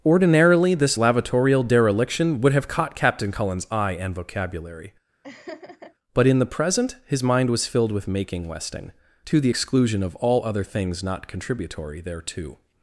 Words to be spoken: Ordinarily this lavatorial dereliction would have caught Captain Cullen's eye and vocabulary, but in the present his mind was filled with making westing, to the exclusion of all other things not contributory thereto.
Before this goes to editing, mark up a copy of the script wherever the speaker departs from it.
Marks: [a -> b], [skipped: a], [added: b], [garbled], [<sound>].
Ordinarily this lavatorial dereliction would have caught Captain Cullen's eye and vocabulary, [laugh] but in the present his mind was filled with making westing, to the exclusion of all other things not contributory thereto.